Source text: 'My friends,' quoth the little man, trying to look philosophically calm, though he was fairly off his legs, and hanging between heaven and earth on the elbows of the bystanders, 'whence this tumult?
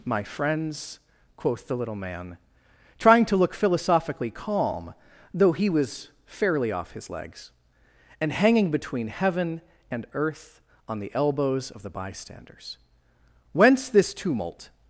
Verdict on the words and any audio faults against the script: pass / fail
pass